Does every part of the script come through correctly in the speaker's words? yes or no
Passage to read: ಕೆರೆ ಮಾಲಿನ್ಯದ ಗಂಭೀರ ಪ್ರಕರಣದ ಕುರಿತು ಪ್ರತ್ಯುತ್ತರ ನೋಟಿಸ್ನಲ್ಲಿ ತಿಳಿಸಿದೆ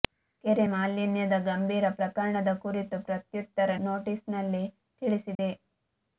yes